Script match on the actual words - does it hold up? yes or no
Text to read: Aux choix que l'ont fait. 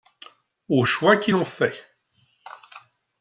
no